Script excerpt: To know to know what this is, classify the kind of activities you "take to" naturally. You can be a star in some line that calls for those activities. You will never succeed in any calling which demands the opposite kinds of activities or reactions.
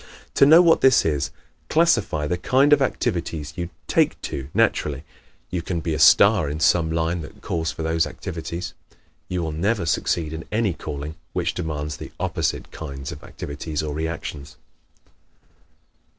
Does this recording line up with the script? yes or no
no